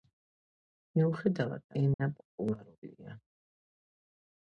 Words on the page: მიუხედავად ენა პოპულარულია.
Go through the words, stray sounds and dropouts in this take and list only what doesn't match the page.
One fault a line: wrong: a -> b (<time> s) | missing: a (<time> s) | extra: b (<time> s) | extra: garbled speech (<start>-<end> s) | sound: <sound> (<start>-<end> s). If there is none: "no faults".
sound: dropout (1.9-2.0 s)